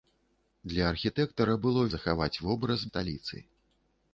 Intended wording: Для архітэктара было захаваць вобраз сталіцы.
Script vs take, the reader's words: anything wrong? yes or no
no